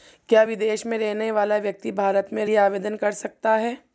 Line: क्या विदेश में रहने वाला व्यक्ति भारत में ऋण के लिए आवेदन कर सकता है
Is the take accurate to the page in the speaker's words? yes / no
no